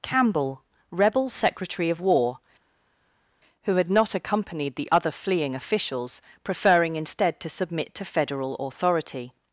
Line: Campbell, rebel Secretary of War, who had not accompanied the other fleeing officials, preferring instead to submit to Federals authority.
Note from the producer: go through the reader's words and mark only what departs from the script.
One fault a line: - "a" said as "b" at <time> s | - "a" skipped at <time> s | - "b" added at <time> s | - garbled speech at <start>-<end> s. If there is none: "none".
- "Federals" said as "Federal" at 8.0 s